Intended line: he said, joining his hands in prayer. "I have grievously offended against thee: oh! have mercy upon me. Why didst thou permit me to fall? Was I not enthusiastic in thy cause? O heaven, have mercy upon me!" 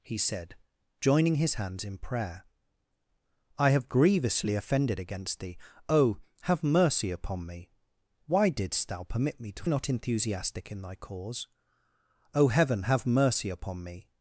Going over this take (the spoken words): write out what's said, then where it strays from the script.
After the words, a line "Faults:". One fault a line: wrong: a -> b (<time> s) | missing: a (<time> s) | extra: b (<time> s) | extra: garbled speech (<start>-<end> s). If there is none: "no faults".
he said, joining his hands in prayer. "I have grievously offended against thee: oh! have mercy upon me. Why didst thou permit me to not enthusiastic in thy cause? O heaven, have mercy upon me!"
Faults:
missing: fall Was I (9.7 s)